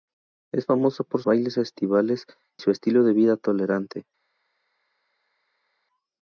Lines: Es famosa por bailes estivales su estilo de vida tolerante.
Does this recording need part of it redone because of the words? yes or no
no